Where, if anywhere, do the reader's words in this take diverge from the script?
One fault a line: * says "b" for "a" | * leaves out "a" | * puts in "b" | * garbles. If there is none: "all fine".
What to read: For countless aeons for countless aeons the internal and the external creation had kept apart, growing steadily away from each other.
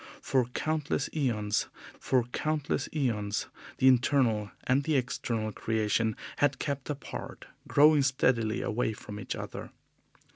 all fine